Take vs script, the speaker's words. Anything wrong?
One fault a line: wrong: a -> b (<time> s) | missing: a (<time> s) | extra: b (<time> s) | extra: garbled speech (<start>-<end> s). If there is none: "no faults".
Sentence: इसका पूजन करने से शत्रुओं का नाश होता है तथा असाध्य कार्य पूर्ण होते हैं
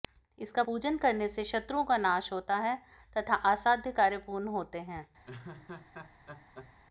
no faults